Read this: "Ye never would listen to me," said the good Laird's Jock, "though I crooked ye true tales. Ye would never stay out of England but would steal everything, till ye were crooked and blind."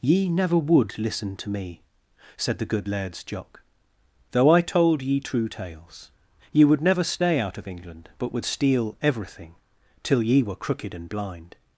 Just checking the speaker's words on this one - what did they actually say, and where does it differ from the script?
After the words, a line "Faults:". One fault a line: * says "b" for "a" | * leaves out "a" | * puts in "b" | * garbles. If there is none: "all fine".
"Ye never would listen to me," said the good Laird's Jock, "though I told ye true tales. Ye would never stay out of England but would steal everything, till ye were crooked and blind."
Faults:
* says "told" for "crooked"